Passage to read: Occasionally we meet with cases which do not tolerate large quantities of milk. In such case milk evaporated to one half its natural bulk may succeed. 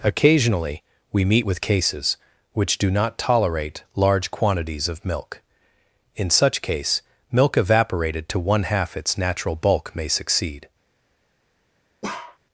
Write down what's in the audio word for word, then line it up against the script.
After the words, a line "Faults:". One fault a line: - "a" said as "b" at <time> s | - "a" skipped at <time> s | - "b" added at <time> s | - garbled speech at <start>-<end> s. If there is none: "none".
Occasionally we meet with cases which do not tolerate large quantities of milk. In such case milk evaporated to one half its natural bulk may succeed.
Faults:
none